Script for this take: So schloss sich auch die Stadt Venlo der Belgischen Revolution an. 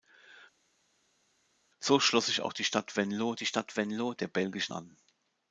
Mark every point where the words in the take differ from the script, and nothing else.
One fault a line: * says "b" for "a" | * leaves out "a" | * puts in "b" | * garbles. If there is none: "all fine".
* puts in "die Stadt Venlo"
* leaves out "Revolution"